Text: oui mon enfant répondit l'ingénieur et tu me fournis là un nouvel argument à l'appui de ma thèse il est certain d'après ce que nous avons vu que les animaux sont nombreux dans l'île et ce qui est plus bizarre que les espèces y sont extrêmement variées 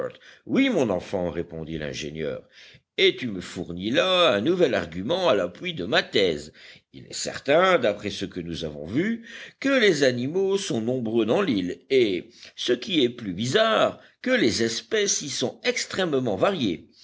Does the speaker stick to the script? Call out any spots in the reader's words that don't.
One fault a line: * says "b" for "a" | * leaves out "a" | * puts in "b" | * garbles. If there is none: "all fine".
all fine